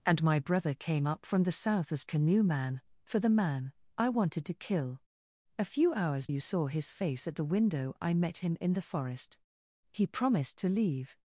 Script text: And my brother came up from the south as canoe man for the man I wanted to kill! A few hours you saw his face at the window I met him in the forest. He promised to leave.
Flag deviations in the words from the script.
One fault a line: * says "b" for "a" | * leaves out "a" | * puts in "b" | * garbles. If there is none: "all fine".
all fine